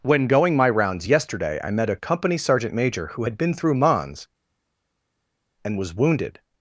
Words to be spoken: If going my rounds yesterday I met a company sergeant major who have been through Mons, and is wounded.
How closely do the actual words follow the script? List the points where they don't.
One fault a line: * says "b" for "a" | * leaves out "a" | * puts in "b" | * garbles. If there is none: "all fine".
* says "When" for "If"
* says "had" for "have"
* says "was" for "is"